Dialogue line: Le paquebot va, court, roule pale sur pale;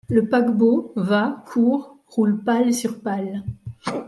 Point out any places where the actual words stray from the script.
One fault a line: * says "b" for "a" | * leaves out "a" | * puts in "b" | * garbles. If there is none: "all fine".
all fine